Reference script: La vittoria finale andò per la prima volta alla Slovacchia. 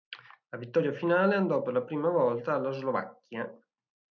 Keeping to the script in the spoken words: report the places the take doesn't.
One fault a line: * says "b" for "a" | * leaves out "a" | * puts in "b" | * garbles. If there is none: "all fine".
all fine